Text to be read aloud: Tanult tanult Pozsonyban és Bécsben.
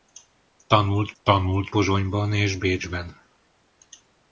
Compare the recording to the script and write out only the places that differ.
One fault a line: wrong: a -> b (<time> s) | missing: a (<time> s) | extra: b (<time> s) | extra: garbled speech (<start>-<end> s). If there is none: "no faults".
no faults